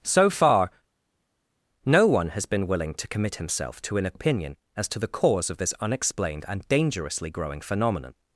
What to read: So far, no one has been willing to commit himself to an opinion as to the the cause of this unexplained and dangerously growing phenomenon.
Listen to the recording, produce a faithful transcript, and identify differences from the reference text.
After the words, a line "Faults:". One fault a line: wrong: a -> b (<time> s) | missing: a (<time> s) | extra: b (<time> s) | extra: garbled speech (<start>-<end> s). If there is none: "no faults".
So far, no one has been willing to commit himself to an opinion as to the cause of this unexplained and dangerously growing phenomenon.
Faults:
missing: the (5.1 s)